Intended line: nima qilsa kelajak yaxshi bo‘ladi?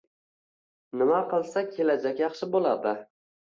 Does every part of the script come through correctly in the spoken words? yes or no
yes